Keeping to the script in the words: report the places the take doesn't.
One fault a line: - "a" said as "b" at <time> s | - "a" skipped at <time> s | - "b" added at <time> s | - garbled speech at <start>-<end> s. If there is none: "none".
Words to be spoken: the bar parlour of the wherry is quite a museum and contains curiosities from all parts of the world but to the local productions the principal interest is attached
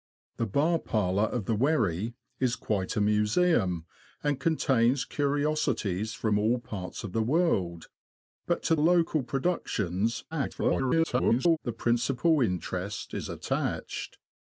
- "the" skipped at 8.8 s
- garbled speech at 10.3-11.6 s